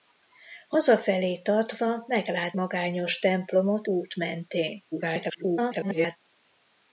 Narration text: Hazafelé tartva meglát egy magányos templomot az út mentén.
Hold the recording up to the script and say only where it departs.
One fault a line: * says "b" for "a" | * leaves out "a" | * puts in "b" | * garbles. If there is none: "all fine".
* leaves out "egy"
* leaves out "az"
* garbles